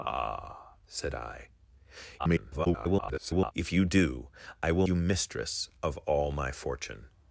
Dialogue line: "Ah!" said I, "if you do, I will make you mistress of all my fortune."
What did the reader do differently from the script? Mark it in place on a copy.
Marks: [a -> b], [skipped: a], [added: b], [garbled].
"Ah!" said I, [garbled] "if you do, I will [skipped: make] you mistress of all my fortune."